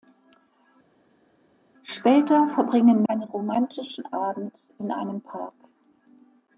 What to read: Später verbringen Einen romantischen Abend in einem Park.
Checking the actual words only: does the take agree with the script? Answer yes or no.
yes